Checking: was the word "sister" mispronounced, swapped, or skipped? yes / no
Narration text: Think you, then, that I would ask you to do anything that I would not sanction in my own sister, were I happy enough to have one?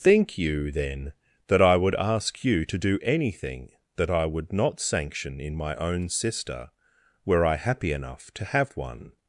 no